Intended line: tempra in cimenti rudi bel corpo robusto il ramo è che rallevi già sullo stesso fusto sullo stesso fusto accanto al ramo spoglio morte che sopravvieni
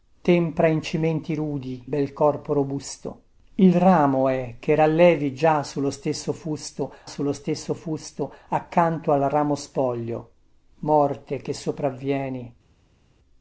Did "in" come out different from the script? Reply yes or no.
no